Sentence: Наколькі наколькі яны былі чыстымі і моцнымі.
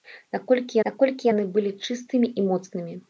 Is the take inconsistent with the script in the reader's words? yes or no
no